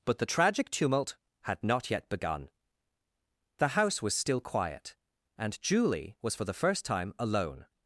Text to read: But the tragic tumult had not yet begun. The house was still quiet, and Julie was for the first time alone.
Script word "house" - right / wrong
right